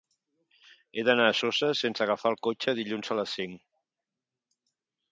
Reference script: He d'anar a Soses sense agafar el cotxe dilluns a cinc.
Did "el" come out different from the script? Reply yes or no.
no